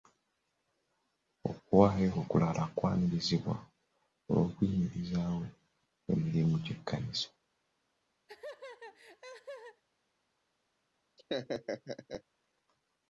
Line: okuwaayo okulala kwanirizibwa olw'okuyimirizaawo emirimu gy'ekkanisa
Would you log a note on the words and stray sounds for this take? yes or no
yes